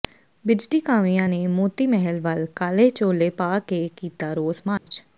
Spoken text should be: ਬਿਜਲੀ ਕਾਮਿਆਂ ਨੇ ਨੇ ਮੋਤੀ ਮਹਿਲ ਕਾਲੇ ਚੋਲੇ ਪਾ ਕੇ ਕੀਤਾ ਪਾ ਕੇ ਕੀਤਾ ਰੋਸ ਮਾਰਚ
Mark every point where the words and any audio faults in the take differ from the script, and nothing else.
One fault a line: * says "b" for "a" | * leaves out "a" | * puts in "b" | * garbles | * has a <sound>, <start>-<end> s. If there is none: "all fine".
* leaves out "ਨੇ"
* puts in "ਵੱਲ"
* leaves out "ਪਾ ਕੇ ਕੀਤਾ"
* has a dropout, 4.8-4.9 s